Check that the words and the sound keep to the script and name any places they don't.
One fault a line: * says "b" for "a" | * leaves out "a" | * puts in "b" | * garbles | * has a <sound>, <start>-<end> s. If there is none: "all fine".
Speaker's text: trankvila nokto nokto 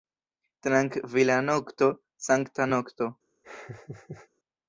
* puts in "sankta"
* has a laugh, 3.4-4.3 s